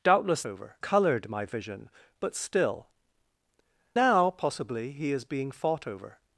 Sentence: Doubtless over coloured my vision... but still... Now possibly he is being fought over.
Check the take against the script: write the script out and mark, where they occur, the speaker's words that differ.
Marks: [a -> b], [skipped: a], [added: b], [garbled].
Doubtless over coloured my vision... but still... Now possibly he is being fought over.